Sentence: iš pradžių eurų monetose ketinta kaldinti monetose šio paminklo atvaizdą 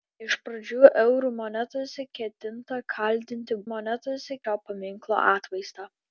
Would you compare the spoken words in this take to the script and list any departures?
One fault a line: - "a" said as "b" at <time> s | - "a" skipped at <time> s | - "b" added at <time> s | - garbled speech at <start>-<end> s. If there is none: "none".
none